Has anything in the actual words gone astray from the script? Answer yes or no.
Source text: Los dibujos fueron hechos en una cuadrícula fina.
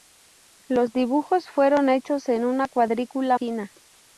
no